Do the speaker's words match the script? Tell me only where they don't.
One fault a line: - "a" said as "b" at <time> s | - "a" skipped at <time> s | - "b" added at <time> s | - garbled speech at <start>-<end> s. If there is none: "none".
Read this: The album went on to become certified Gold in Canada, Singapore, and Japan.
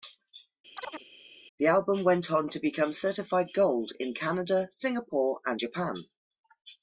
none